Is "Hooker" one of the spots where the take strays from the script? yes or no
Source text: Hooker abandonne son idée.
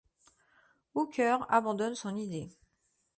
no